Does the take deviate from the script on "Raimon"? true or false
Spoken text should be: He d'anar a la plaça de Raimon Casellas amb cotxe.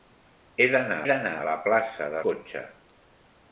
true